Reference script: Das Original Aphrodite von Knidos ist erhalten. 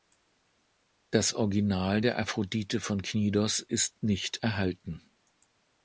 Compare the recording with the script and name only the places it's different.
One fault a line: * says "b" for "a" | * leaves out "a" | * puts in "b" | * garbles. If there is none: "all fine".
* puts in "der"
* puts in "nicht"